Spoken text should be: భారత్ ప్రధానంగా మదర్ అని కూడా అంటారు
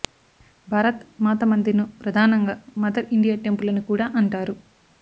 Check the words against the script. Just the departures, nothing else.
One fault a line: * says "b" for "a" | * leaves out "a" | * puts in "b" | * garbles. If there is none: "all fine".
* puts in "మాత మందిర్ ను"
* puts in "ఇండియా టెంపుల్"